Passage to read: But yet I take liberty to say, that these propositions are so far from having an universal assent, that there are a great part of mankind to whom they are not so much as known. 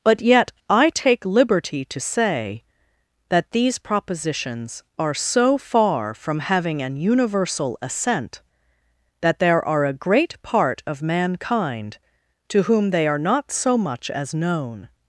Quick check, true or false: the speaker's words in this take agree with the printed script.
true